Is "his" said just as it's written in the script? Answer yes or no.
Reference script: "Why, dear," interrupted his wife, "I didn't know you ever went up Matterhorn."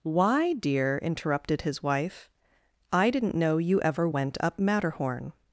yes